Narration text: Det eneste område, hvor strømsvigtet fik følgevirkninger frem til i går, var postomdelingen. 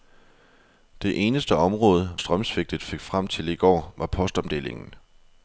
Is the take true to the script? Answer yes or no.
no